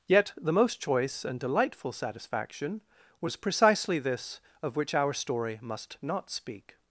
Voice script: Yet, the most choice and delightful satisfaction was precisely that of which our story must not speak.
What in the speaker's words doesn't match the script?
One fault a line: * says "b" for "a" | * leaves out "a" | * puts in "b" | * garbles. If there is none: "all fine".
* says "this" for "that"